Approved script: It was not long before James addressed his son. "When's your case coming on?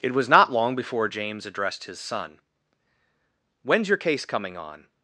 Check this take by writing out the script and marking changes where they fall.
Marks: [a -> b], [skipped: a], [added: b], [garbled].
It was not long before James addressed his son. "When's your case coming on?